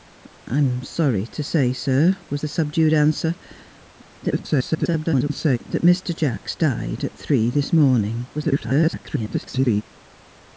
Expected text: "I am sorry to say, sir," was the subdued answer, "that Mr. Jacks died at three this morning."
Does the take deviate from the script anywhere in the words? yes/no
yes